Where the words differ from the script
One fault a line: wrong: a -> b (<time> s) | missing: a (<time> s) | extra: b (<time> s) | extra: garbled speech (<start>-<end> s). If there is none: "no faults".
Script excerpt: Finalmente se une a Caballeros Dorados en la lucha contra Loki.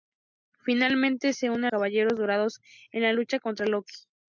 no faults